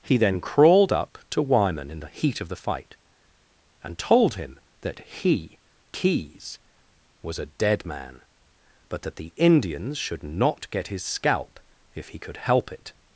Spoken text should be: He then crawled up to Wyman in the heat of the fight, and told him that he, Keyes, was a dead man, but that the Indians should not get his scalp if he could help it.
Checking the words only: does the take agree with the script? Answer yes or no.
yes